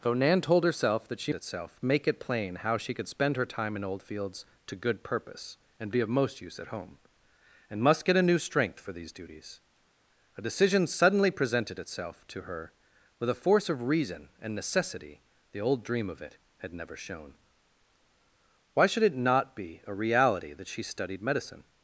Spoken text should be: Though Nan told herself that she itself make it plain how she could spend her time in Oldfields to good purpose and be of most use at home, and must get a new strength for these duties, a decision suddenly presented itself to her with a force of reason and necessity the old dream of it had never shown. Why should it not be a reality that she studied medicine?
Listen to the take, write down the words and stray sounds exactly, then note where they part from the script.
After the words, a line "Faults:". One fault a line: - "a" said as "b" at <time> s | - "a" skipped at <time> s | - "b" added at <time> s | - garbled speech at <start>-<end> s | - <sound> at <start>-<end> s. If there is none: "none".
Though Nan told herself that she itself make it plain how she could spend her time in Oldfields to good purpose and be of most use at home, and must get a new strength for these duties, a decision suddenly presented itself to her with a force of reason and necessity the old dream of it had never shown. Why should it not be a reality that she studied medicine?
Faults:
none